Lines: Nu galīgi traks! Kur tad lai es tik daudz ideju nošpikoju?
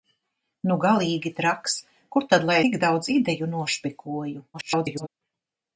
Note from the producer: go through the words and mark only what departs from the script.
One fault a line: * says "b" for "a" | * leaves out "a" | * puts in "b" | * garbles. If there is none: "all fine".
* leaves out "es"
* garbles